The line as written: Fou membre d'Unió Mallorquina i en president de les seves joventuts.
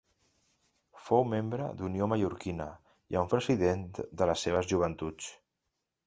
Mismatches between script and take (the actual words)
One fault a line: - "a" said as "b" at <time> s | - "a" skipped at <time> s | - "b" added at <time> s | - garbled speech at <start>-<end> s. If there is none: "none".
none